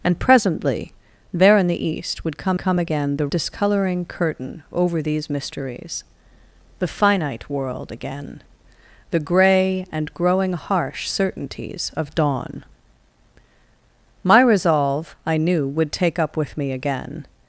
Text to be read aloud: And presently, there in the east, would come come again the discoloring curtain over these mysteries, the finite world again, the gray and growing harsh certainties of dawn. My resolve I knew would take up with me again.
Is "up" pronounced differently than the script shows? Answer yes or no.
no